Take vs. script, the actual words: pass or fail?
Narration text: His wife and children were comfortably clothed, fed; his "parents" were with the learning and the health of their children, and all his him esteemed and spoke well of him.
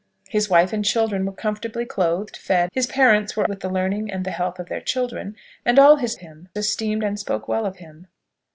pass